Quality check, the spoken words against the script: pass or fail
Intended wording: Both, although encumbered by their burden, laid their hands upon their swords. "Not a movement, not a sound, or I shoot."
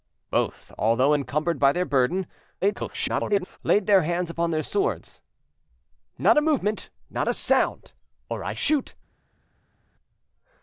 fail